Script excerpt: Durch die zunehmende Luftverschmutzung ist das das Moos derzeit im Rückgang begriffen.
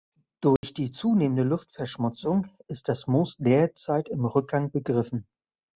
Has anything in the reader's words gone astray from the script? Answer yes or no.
yes